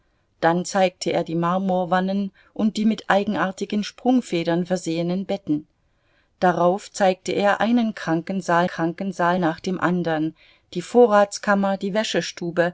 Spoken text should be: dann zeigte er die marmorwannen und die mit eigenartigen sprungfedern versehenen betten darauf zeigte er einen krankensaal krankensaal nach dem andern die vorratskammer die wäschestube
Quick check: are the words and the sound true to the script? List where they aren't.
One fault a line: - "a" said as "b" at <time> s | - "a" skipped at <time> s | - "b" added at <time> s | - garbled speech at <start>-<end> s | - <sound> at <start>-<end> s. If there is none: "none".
none